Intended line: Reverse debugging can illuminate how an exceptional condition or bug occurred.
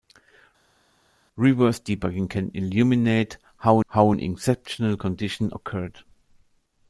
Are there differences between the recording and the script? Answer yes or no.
yes